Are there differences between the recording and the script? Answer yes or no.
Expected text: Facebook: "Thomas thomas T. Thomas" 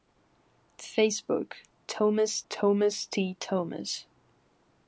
no